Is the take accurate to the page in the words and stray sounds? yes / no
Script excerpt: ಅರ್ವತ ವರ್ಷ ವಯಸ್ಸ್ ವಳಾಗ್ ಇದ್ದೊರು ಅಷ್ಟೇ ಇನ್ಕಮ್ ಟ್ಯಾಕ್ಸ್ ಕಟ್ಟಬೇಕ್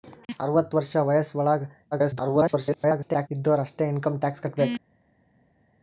no